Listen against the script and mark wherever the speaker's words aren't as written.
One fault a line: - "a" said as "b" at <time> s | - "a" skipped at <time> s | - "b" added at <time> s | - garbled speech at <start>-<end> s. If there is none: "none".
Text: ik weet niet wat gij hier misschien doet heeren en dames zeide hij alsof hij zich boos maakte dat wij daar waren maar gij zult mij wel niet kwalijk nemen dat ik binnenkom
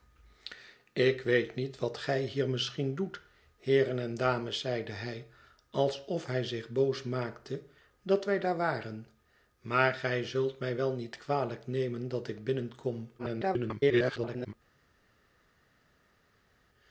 - garbled speech at 13.2-14.5 s